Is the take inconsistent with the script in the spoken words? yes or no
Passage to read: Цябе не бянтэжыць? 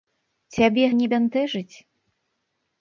no